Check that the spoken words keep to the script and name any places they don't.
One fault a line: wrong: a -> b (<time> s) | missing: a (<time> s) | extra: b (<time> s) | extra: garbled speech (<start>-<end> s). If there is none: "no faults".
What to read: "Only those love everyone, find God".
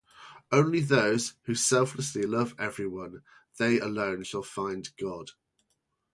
extra: who selflessly (1.4 s)
extra: they alone shall (3.6 s)